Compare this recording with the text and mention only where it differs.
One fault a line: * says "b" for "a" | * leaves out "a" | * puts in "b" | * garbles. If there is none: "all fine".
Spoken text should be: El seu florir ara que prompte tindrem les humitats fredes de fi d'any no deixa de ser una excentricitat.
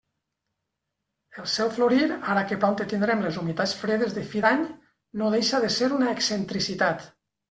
all fine